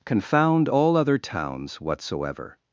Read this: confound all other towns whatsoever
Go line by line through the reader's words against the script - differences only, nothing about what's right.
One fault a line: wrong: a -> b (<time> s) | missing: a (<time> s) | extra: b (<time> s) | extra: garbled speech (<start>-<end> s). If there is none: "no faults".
no faults